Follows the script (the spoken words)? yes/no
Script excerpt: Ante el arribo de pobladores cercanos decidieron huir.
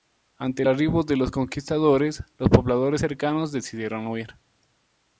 no